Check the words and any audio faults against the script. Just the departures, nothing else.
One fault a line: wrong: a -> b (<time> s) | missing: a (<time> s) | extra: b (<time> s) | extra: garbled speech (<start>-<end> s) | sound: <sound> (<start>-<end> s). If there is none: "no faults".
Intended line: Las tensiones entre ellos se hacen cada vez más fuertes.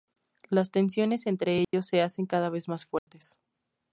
sound: dropout (1.6-1.7 s)
sound: dropout (3.0-3.1 s)